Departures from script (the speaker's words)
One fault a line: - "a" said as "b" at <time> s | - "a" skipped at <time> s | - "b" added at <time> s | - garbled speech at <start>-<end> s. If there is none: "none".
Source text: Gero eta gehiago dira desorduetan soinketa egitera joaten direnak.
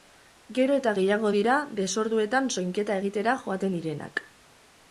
none